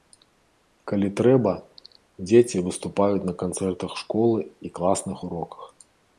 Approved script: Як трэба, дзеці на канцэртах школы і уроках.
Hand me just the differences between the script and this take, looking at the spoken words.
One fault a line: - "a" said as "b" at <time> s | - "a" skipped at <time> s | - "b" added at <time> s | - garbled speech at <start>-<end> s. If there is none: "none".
- "Як" said as "Калі" at 0.9 s
- "выступаюць" added at 2.7 s
- "класных" added at 4.8 s